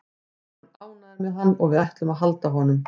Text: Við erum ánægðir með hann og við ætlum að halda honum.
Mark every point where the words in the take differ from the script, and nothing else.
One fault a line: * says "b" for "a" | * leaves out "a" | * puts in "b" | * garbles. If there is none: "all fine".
all fine